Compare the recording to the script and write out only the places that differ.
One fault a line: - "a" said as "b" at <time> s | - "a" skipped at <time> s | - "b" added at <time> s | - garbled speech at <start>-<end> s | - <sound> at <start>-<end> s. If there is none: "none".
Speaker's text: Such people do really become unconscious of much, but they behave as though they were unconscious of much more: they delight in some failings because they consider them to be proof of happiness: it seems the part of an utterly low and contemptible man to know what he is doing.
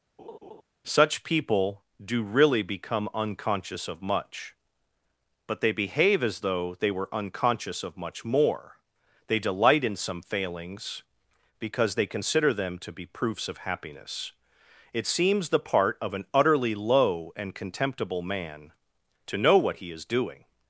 - laugh at 0.2-0.6 s
- "proof" said as "proofs" at 13.0 s